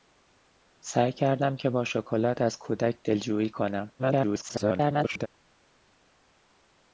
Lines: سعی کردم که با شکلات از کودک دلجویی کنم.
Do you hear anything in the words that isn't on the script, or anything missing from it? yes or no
yes